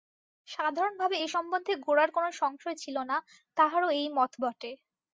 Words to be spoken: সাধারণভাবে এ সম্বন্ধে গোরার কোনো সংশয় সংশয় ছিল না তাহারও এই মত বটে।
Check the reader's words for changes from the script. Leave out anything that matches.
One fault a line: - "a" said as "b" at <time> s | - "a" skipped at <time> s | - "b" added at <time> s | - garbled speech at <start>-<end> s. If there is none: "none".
- "সংশয়" skipped at 2.8 s